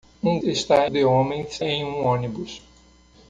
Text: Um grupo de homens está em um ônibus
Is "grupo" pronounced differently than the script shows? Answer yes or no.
yes